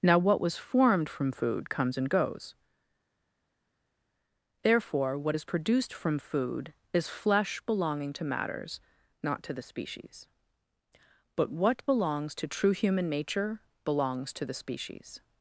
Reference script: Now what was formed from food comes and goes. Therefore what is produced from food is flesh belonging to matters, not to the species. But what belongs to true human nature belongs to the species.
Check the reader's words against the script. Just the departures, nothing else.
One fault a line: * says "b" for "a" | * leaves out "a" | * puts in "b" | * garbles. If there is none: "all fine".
all fine